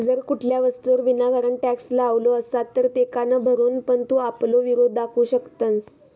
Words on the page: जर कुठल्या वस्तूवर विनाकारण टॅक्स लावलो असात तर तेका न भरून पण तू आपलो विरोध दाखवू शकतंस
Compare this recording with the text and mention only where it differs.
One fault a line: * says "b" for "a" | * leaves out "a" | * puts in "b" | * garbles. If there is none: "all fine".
all fine